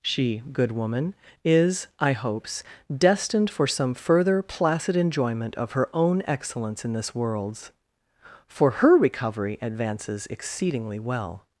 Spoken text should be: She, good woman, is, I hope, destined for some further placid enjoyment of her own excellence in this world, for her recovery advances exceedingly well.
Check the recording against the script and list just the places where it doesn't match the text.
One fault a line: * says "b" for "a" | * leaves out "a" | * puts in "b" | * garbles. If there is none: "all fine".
* says "hopes" for "hope"
* says "worlds" for "world"